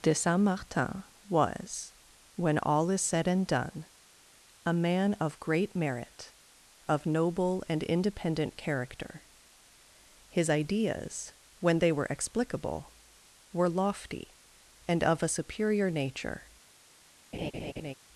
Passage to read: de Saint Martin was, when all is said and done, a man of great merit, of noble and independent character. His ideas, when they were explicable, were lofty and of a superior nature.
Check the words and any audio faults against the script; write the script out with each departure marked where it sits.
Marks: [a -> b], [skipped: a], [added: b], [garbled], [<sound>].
de Saint Martin was, when all is said and done, a man of great merit, of noble and independent character. His ideas, when they were explicable, were lofty and of a superior nature. [laugh]